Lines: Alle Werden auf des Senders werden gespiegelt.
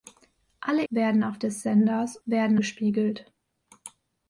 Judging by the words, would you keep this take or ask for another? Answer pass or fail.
pass